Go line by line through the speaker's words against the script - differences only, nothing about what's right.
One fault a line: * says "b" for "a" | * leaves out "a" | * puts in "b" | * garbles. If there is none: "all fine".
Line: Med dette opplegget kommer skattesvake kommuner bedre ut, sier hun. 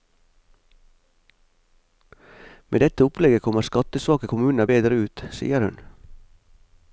all fine